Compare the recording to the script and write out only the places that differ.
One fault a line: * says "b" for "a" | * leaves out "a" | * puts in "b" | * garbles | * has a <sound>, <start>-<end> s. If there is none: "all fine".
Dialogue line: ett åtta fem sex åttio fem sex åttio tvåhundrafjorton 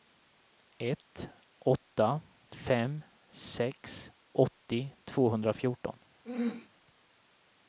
* leaves out "fem sex åttio"
* has a throat clearing, 6.2-6.7 s